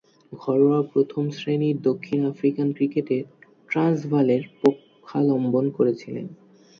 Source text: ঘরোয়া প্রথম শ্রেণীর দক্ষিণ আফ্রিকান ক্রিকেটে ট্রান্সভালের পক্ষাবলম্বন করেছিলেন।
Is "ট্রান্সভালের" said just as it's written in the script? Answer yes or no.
yes